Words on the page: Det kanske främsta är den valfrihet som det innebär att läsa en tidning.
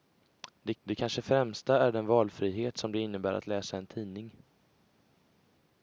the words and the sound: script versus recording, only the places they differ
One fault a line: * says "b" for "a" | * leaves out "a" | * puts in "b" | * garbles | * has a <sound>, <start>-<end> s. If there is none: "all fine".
* puts in "det"